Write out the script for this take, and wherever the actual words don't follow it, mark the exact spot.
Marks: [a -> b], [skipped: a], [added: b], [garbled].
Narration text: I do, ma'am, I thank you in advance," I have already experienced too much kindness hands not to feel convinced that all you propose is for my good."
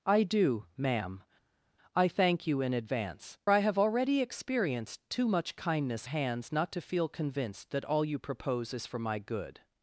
I do, ma'am, I thank you in advance," I have already experienced too much kindness hands not to feel convinced that all you propose is for my good."